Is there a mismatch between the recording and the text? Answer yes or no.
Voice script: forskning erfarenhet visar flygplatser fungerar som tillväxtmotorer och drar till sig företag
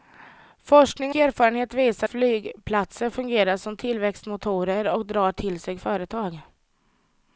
no